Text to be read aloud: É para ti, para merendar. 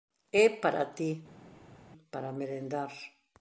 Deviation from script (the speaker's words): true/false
false